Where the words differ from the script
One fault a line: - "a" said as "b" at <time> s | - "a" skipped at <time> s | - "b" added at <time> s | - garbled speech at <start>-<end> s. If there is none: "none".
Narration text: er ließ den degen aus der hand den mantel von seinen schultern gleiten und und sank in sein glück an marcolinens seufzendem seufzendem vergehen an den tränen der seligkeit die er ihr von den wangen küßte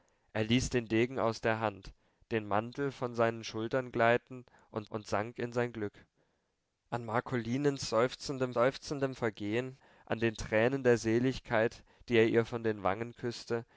none